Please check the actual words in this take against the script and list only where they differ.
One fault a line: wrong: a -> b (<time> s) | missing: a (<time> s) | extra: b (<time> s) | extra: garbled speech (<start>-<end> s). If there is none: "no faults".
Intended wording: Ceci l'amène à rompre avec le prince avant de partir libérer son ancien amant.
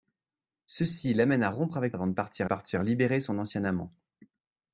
missing: le prince (1.9 s)
extra: partir (2.4 s)